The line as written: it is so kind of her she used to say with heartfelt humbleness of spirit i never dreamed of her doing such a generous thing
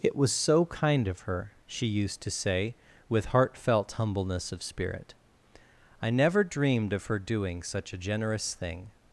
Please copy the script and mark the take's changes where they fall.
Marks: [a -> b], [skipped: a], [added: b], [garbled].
it [is -> was] so kind of her she used to say with heartfelt humbleness of spirit i never dreamed of her doing such a generous thing